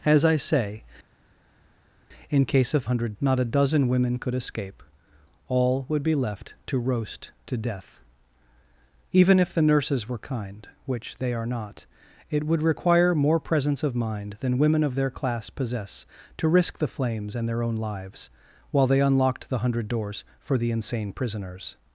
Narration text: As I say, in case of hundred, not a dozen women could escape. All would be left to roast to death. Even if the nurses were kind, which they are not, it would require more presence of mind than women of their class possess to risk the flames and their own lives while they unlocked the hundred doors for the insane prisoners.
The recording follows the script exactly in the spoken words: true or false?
true